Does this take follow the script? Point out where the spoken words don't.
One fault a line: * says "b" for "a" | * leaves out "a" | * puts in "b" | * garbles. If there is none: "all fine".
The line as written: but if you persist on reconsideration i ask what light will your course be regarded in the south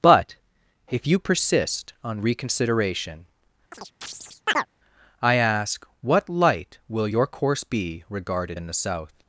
all fine